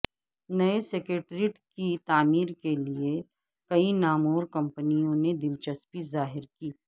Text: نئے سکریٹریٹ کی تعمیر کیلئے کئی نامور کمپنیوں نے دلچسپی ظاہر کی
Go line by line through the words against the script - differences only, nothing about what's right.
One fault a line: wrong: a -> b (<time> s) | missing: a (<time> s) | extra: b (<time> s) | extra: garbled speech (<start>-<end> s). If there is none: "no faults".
no faults